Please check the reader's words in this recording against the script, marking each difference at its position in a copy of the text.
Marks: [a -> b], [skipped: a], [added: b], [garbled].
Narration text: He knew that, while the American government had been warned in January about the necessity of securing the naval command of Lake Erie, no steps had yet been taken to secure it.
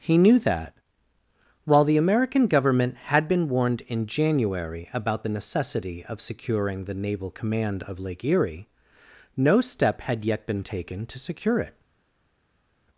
He knew that, while the American government had been warned in January about the necessity of securing the naval command of Lake Erie, no [steps -> step] had yet been taken to secure it.